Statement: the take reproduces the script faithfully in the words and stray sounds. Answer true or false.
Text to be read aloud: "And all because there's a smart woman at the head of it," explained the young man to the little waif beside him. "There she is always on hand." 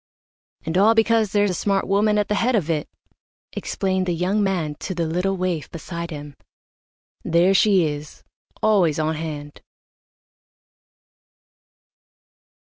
true